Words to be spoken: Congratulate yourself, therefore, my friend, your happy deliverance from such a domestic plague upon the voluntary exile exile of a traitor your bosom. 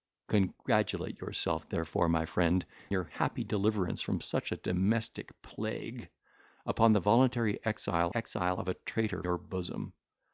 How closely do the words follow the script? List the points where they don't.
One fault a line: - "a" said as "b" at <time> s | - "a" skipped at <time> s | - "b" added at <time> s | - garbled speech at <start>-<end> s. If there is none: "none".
none